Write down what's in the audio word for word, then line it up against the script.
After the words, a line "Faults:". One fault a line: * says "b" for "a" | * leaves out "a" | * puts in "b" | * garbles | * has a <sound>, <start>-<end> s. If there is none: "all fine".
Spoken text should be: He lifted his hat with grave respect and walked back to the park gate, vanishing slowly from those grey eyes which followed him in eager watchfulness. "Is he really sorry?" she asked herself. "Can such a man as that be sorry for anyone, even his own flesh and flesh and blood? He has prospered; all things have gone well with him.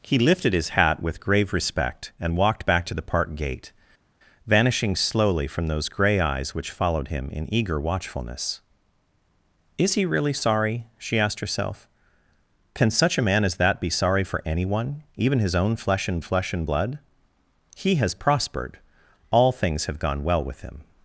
He lifted his hat with grave respect and walked back to the park gate, vanishing slowly from those grey eyes which followed him in eager watchfulness. "Is he really sorry?" she asked herself. "Can such a man as that be sorry for anyone, even his own flesh and flesh and blood? He has prospered; all things have gone well with him.
Faults:
all fine